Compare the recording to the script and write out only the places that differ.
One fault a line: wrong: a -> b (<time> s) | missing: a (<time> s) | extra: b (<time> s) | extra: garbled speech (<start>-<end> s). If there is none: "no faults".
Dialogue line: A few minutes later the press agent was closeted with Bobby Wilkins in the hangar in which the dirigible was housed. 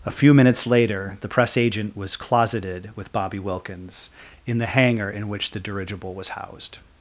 no faults